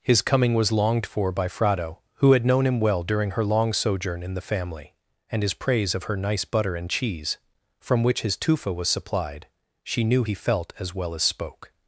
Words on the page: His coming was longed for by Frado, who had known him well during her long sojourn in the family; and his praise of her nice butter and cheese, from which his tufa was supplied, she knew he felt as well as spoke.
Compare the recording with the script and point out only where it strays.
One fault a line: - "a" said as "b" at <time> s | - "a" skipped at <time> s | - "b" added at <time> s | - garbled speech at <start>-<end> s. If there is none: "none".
none